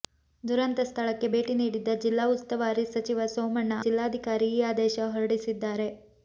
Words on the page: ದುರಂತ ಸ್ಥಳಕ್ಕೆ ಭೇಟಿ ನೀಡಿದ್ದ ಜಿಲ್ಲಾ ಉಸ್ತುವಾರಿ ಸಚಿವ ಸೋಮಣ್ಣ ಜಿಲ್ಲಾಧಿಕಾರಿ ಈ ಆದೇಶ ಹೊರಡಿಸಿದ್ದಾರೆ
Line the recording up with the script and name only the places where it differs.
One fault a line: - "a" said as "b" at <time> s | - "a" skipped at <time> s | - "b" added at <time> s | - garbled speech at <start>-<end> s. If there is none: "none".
none